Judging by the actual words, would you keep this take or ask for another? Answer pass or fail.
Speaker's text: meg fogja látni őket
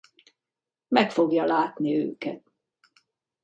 pass